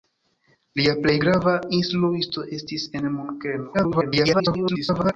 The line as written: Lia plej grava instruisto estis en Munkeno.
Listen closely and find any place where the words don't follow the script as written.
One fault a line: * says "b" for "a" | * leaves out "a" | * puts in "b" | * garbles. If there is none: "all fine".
* garbles